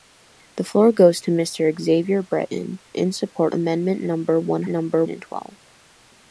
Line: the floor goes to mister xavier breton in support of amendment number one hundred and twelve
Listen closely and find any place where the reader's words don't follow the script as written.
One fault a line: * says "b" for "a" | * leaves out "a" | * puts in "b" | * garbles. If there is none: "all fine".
* leaves out "of"
* says "number" for "hundred"